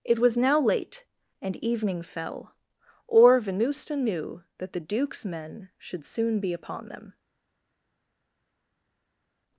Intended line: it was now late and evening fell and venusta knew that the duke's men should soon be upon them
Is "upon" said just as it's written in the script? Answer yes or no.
yes